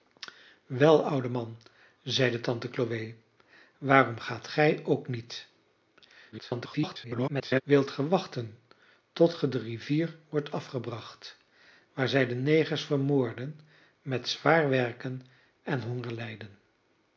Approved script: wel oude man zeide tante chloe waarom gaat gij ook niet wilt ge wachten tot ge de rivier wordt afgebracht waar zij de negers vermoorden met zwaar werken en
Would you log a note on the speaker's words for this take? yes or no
yes